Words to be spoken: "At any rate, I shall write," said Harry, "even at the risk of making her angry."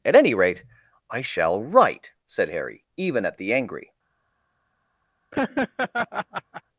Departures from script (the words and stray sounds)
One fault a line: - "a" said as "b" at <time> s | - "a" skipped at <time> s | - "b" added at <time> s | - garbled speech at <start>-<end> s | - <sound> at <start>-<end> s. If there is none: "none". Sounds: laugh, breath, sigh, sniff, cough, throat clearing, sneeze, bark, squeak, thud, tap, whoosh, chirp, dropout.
- "risk of making her" skipped at 3.5 s
- laugh at 5.3-6.6 s